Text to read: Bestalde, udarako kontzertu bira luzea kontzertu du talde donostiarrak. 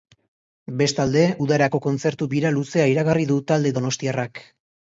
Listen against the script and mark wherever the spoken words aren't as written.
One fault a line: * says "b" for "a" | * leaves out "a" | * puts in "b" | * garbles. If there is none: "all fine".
* says "iragarri" for "kontzertu"